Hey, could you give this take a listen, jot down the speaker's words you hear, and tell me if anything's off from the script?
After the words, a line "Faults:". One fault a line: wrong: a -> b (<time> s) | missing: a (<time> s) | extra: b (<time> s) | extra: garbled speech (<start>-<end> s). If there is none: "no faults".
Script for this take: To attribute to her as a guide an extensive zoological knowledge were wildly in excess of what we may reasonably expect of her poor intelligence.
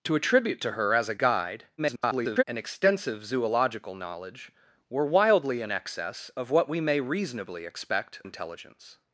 To attribute to her as a guide [garbled] an extensive zoological knowledge were wildly in excess of what we may reasonably expect intelligence.
Faults:
extra: garbled speech (1.8-2.4 s)
missing: of her poor (8.2 s)